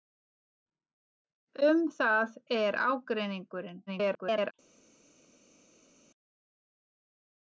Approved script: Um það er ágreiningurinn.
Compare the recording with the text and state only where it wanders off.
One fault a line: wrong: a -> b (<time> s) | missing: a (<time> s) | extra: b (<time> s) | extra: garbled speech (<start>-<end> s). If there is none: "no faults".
extra: garbled speech (3.9-4.5 s)